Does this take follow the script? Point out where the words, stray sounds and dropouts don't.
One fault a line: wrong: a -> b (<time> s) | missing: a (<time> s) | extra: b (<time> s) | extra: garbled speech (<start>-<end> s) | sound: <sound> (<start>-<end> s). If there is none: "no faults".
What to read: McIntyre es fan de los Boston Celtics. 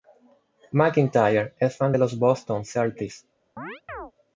sound: chirp (3.6-4.1 s)